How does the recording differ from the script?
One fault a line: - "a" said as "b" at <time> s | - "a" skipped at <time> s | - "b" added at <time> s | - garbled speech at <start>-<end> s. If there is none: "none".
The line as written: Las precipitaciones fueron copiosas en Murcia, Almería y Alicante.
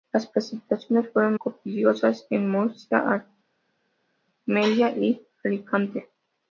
none